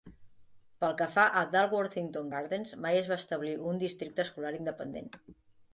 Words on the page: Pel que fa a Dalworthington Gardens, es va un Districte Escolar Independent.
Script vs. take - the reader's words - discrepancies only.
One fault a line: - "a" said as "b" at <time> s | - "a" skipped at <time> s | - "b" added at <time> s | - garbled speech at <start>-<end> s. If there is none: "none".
- "mai" added at 2.9 s
- "establir" added at 3.3 s